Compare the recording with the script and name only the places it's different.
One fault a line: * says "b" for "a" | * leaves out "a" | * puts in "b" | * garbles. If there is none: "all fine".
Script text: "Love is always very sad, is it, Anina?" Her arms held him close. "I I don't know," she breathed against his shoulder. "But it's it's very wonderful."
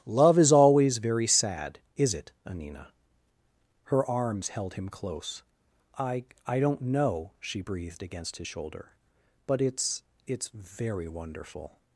all fine